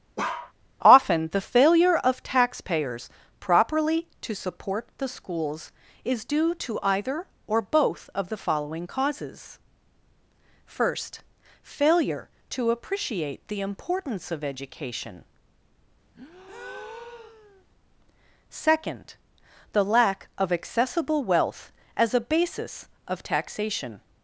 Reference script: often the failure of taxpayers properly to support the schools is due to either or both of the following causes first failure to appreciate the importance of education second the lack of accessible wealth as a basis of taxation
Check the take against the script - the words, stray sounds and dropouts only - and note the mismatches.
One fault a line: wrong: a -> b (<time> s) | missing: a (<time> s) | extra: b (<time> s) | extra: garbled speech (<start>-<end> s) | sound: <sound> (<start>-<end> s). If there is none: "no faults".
sound: bark (0.2-0.5 s)
sound: breath (16.1-17.7 s)